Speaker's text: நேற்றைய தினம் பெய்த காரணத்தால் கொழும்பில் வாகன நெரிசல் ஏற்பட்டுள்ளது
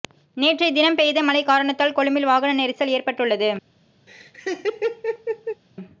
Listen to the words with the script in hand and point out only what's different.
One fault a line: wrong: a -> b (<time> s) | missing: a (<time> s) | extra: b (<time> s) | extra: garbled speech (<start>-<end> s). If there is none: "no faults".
extra: மழை (1.2 s)